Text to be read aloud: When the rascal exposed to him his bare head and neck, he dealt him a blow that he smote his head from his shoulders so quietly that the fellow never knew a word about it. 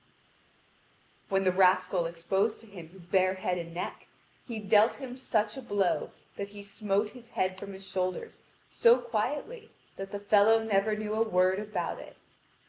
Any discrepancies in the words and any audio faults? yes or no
yes